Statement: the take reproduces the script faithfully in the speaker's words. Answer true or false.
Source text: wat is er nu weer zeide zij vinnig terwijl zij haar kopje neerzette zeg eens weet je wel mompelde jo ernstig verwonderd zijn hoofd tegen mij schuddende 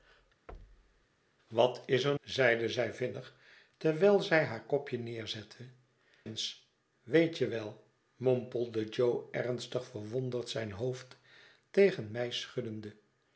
false